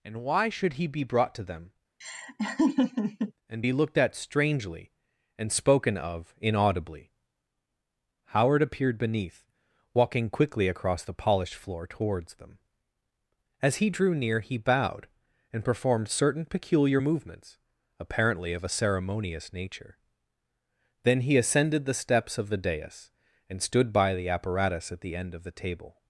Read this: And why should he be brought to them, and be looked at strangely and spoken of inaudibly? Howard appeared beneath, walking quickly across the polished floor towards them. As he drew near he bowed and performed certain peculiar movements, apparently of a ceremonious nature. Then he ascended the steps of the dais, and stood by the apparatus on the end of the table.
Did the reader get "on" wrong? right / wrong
wrong